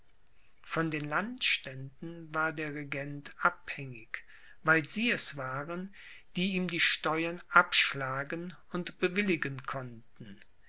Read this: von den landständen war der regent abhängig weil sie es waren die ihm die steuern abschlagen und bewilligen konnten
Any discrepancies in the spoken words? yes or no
no